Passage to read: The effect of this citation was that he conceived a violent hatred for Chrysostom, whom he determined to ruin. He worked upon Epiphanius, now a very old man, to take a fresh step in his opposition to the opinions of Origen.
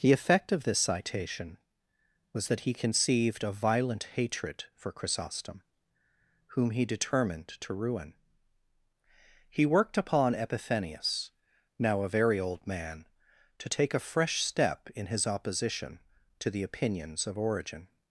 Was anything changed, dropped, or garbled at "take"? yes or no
no